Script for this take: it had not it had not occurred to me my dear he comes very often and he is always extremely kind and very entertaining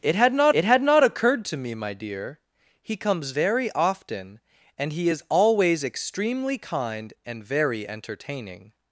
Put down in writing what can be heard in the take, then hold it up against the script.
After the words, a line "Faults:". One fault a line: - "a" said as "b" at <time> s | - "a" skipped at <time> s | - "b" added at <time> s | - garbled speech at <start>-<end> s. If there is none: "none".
it had not it had not occurred to me my dear he comes very often and he is always extremely kind and very entertaining
Faults:
none